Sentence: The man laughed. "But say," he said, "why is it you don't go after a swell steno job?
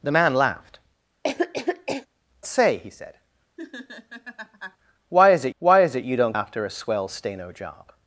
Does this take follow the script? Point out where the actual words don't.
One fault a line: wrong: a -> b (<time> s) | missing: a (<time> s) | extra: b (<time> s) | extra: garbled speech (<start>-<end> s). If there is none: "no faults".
missing: But (0.8 s)
extra: why is it (5.6 s)
missing: go (6.3 s)